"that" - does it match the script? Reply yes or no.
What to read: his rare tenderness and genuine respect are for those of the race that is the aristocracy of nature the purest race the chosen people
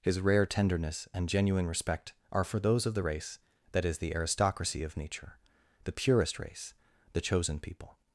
yes